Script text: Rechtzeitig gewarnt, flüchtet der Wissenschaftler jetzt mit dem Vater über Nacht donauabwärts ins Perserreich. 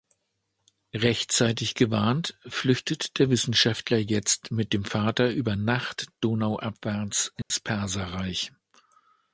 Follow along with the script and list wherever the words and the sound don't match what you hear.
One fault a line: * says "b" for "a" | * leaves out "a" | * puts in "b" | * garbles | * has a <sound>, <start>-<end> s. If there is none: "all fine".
* has a dropout, 7.4-7.5 s